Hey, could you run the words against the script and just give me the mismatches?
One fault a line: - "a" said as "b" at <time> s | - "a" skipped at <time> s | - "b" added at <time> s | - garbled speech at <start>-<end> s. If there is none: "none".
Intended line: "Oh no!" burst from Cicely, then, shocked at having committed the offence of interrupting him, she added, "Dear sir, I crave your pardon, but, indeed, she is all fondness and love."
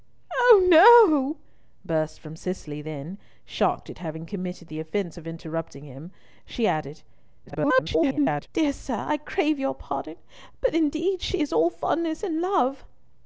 - garbled speech at 7.5-8.5 s